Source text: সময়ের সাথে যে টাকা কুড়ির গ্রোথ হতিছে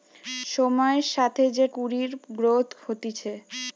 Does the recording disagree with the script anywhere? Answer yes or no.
yes